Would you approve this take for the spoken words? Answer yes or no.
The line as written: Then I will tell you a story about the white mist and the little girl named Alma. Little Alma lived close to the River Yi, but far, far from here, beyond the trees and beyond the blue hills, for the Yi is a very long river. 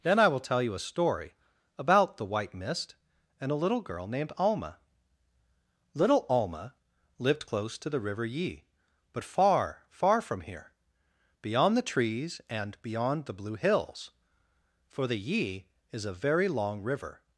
no